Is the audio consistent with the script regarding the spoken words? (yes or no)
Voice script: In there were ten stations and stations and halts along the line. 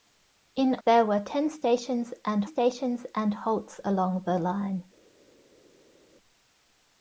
yes